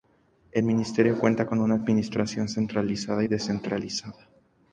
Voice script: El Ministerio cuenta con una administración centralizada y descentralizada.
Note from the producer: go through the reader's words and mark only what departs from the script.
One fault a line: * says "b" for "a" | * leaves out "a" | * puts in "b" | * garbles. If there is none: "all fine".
all fine